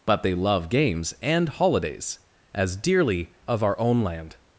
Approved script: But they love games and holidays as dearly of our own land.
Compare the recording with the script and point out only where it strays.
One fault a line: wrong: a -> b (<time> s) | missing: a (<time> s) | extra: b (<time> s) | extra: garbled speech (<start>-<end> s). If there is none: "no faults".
no faults